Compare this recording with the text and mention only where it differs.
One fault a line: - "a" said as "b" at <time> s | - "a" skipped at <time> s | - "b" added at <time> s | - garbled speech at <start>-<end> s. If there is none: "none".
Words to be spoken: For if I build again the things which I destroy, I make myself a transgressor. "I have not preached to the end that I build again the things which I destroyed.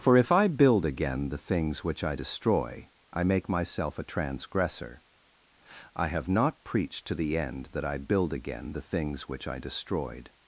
none